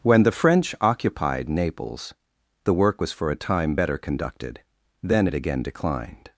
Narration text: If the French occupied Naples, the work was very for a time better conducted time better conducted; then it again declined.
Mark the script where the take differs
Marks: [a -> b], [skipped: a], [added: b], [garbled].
[If -> When] the French occupied Naples, the work was [skipped: very] for a time better conducted [skipped: time better conducted;] then it again declined.